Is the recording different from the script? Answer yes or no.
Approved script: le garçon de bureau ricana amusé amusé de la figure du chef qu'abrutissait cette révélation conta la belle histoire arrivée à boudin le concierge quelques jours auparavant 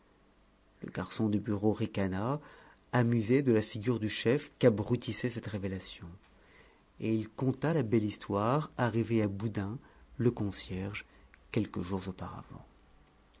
yes